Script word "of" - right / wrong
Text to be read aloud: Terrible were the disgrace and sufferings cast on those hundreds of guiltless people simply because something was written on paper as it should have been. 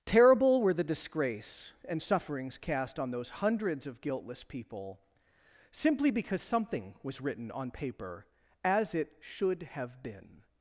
right